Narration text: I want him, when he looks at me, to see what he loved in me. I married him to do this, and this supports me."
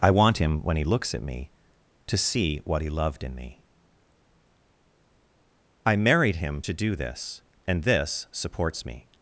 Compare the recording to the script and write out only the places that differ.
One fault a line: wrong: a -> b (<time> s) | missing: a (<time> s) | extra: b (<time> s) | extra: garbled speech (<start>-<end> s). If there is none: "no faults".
no faults